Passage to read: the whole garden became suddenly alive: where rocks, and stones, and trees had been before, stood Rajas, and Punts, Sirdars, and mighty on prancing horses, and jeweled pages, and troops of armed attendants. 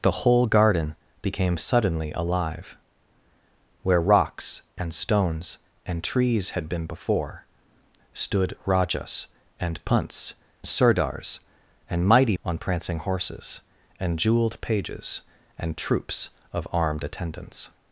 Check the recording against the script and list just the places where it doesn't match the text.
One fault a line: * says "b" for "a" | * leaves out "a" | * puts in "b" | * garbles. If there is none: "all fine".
all fine